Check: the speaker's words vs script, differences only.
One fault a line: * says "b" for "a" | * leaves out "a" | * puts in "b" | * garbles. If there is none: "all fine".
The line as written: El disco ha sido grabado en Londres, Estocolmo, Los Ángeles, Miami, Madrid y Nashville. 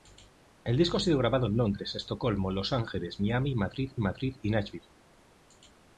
* puts in "Madrid"